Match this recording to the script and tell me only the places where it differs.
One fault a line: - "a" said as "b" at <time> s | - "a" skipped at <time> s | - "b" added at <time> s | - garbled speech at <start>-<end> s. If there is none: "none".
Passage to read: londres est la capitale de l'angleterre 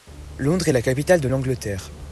none